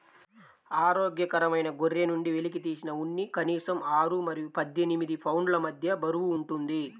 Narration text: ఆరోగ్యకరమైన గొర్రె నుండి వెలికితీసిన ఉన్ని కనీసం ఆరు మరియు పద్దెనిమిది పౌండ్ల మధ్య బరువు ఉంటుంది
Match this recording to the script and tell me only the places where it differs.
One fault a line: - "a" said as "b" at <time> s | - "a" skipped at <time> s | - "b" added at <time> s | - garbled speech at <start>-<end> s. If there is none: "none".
none